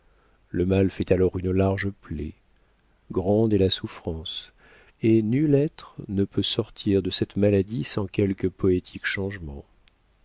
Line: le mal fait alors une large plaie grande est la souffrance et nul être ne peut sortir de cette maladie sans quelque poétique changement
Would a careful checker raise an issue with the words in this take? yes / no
no